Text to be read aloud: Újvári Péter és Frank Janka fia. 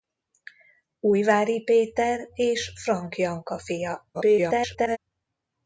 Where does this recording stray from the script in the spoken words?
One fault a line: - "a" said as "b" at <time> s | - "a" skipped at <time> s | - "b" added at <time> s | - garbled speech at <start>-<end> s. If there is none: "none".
- garbled speech at 4.1-5.0 s